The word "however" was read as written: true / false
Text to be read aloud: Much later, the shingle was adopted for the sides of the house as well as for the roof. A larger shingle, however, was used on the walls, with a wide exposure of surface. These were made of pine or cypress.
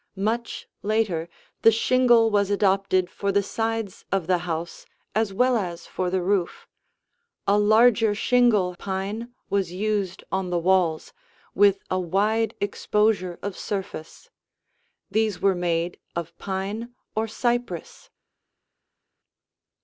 false